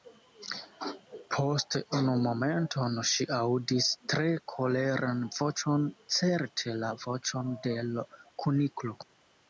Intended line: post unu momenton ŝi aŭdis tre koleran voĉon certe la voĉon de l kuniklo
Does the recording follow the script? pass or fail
pass